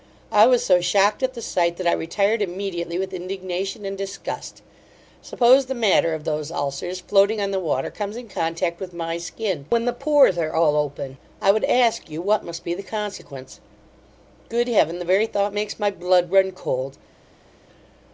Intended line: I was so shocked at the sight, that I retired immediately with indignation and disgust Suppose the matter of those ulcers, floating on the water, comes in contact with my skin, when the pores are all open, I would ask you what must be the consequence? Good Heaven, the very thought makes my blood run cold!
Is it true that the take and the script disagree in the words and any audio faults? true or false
false